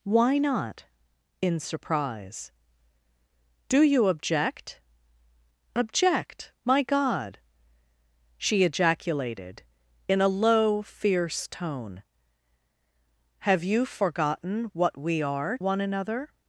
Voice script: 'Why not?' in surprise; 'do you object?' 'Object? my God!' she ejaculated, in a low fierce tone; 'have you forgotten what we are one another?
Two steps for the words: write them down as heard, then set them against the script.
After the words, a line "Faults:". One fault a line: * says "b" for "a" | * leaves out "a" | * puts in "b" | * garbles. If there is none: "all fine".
'Why not?' in surprise; 'do you object?' 'Object? my God!' she ejaculated, in a low fierce tone; 'have you forgotten what we are one another?
Faults:
all fine